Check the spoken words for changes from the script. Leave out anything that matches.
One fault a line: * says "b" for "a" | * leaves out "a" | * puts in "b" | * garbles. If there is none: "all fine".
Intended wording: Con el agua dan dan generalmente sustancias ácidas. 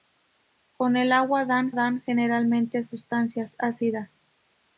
all fine